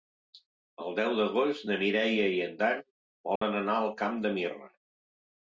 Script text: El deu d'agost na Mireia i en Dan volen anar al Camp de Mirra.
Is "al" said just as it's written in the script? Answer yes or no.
yes